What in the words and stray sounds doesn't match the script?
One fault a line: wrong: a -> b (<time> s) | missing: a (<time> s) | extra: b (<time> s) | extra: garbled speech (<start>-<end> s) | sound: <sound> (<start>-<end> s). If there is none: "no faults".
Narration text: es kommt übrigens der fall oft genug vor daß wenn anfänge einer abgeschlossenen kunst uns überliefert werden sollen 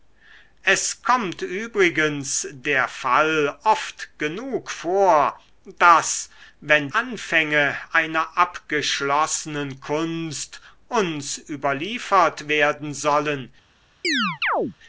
sound: chirp (14.0-14.7 s)